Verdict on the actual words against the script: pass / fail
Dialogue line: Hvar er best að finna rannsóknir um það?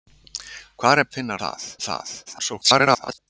fail